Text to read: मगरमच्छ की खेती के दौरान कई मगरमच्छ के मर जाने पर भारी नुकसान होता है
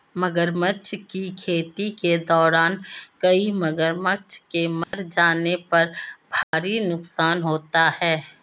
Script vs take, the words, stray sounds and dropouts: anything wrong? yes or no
yes